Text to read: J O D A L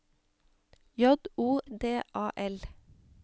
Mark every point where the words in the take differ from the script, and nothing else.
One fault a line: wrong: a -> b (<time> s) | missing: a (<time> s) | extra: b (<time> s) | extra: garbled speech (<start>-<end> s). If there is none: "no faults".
no faults